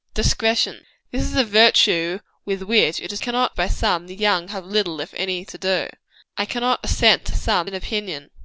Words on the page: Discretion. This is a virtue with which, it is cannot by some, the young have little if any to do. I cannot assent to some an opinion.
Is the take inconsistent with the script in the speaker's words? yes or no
no